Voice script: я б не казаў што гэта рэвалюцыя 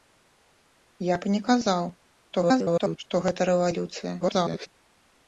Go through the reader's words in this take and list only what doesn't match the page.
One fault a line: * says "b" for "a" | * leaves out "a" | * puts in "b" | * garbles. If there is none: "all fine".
* garbles
* garbles